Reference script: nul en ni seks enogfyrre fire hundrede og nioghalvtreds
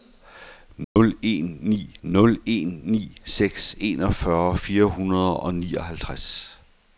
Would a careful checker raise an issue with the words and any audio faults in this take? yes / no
yes